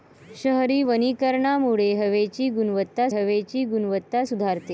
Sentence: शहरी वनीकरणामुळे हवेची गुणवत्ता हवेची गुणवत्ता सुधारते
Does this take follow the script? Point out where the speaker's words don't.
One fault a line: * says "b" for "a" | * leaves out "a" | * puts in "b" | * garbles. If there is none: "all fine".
all fine